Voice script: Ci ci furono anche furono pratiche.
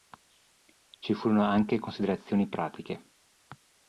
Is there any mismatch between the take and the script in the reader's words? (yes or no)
yes